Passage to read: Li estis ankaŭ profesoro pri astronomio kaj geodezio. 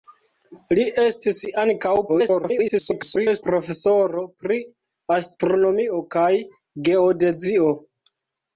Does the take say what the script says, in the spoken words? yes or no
no